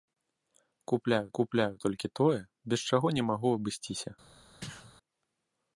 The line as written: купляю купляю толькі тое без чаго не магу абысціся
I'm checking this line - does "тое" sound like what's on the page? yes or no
yes